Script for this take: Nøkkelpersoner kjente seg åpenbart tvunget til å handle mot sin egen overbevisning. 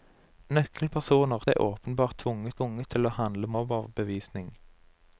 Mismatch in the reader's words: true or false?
true